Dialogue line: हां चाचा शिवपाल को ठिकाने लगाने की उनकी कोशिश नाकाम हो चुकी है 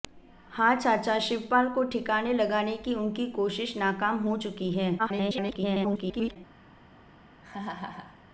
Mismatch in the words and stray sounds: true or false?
true